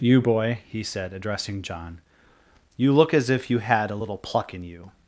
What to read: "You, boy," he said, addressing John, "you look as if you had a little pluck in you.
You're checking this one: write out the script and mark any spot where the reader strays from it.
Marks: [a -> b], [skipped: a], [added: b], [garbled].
"You, boy," he said, addressing John, "you look as if you had a little pluck in you.